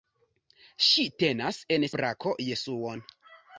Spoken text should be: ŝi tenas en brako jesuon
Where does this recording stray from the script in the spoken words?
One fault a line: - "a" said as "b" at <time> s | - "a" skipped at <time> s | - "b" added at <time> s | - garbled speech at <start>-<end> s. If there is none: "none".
none